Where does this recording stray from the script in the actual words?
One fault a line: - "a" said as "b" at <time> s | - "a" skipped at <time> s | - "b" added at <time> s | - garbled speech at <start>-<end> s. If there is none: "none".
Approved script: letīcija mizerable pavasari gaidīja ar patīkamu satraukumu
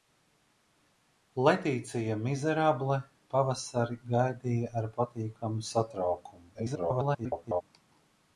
- garbled speech at 6.5-7.6 s